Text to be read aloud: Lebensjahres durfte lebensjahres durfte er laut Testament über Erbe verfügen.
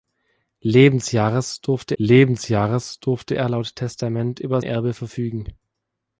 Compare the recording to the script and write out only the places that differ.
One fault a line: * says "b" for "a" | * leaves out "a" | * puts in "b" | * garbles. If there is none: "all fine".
all fine